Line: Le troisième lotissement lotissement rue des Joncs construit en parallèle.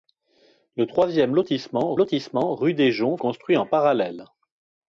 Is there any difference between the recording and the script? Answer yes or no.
no